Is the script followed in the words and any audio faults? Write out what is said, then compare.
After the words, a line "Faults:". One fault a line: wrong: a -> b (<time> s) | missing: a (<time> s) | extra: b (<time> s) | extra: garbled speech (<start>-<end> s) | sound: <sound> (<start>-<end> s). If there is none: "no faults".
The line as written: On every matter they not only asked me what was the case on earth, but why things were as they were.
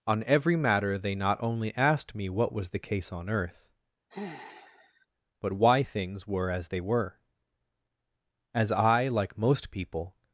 On every matter they not only asked me what was the case on earth, but why things were as they were. As I, like most people
Faults:
sound: sigh (4.1-5.1 s)
extra: As I like most people (8.5 s)